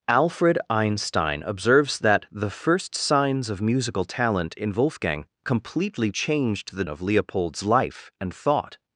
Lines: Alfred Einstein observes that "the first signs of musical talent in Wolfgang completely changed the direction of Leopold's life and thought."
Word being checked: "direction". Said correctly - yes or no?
no